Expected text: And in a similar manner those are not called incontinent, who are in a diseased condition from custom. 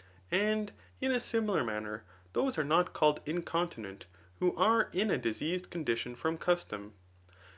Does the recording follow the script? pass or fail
pass